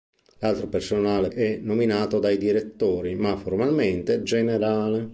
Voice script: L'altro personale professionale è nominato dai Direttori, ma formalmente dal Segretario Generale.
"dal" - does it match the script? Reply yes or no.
no